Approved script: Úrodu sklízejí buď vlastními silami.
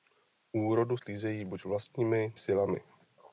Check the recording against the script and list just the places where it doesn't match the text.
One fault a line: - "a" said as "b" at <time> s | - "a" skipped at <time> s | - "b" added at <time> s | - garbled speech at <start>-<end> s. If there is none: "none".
none